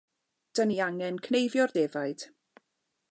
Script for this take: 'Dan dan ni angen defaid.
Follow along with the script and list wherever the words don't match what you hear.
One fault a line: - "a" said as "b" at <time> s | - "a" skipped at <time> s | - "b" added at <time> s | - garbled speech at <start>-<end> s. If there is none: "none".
- "dan" skipped at 0.7 s
- "cneifio'r" added at 1.3 s